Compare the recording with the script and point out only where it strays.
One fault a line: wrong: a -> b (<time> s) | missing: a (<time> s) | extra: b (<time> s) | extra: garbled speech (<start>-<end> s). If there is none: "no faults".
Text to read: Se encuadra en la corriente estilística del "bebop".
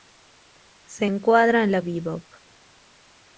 missing: corriente estilística del (1.8 s)